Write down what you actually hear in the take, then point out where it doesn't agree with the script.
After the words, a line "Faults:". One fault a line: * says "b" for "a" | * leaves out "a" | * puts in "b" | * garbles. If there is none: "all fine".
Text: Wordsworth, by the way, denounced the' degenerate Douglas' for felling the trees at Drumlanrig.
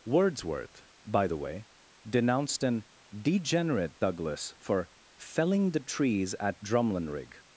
Wordsworth, by the way, denounced an' degenerate Douglas' for felling the trees at Drumlanrig.
Faults:
* says "an" for "the"